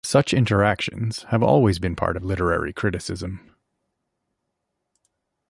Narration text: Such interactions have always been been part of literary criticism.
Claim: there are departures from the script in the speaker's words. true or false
true